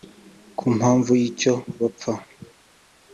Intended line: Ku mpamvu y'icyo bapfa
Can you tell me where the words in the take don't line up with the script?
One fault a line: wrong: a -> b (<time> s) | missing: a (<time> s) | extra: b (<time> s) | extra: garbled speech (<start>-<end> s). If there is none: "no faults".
no faults